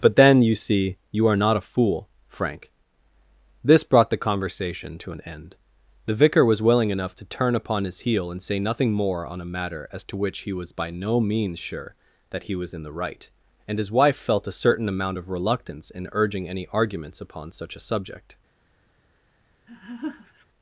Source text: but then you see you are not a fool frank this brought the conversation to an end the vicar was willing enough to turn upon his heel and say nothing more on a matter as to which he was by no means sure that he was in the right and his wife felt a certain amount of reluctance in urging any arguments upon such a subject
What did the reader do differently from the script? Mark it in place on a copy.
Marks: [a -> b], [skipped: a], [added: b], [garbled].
but then you see you are not a fool frank this brought the conversation to an end the vicar was willing enough to turn upon his heel and say nothing more on a matter as to which he was by no means sure that he was in the right and his wife felt a certain amount of reluctance in urging any arguments upon such a subject